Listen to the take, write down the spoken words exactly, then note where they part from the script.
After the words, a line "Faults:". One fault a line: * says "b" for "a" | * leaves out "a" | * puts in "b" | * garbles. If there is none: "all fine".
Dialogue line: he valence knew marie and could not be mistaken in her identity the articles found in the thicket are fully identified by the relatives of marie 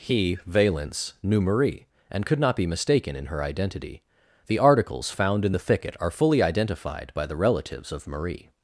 he valence knew marie and could not be mistaken in her identity the articles found in the thicket are fully identified by the relatives of marie
Faults:
all fine